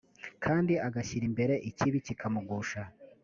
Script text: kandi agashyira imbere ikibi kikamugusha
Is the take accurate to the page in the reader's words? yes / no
yes